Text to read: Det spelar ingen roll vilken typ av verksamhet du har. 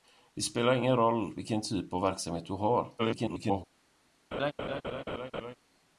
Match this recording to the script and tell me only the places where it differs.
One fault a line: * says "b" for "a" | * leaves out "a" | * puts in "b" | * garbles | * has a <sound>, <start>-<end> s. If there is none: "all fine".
* garbles
* has a laugh, 4.3-5.6 s